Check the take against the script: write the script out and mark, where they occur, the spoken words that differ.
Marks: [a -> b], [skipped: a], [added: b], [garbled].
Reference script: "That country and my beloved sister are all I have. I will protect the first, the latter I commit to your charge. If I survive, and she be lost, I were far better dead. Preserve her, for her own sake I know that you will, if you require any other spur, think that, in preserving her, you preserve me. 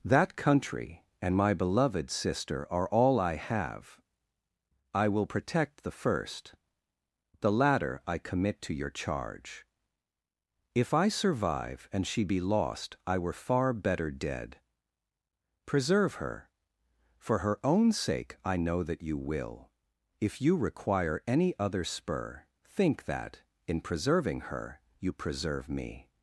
"That country and my beloved sister are all I have. I will protect the first, the latter I commit to your charge. If I survive, and she be lost, I were far better dead. Preserve her, for her own sake I know that you will, if you require any other spur, think that, in preserving her, you preserve me.